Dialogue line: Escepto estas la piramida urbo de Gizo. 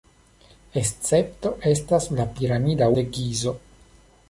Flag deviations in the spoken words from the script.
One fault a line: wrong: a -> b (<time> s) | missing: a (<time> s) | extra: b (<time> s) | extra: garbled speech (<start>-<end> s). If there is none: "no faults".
missing: urbo (2.9 s)